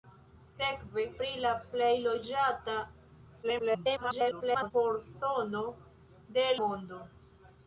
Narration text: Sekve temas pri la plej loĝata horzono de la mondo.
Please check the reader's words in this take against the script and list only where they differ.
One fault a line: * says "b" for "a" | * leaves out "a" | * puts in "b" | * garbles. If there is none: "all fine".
* leaves out "temas"
* garbles
* leaves out "la"